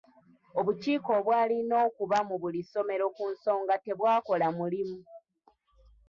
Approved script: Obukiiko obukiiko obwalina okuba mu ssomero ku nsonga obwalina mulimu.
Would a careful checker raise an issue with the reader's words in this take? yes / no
yes